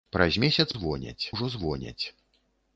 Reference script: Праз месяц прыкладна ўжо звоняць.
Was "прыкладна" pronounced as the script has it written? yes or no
no